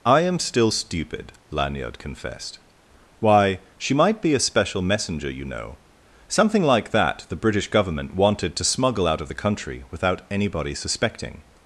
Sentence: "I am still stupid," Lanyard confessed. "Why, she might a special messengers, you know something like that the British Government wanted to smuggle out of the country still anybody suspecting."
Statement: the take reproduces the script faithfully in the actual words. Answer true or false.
false